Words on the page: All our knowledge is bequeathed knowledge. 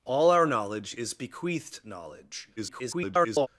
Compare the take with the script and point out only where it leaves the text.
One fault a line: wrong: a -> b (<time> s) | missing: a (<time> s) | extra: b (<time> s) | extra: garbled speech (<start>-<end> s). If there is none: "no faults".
extra: garbled speech (2.6-3.5 s)